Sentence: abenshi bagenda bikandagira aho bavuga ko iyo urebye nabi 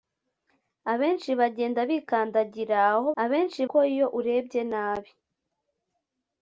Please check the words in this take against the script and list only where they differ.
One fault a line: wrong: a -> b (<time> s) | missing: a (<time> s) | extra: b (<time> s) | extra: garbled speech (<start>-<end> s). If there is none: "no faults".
wrong: bavuga -> abenshi (3.2 s)